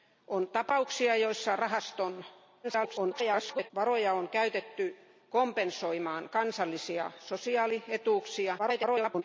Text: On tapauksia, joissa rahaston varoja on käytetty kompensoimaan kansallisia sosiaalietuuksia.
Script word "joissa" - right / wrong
right